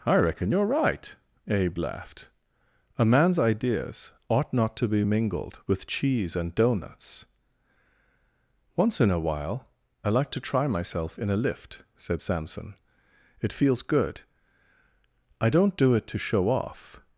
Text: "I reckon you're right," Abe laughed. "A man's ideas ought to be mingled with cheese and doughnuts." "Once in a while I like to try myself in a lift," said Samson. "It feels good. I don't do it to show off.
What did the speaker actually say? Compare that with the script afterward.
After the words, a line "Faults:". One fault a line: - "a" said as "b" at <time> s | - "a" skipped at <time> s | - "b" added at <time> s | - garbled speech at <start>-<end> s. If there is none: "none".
"I reckon you're right," Abe laughed. "A man's ideas ought not to be mingled with cheese and doughnuts." "Once in a while I like to try myself in a lift," said Samson. "It feels good. I don't do it to show off.
Faults:
- "not" added at 4.5 s